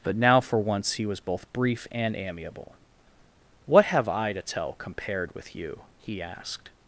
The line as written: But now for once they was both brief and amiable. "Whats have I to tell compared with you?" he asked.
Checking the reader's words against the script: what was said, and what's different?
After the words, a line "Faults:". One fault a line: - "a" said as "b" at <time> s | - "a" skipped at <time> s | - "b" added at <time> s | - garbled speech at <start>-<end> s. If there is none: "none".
But now for once he was both brief and amiable. "What have I to tell compared with you?" he asked.
Faults:
- "they" said as "he" at 0.9 s
- "Whats" said as "What" at 3.7 s